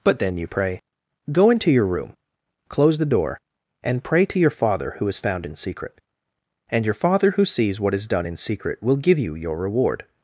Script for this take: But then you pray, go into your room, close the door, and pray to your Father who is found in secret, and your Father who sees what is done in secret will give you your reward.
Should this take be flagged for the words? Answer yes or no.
no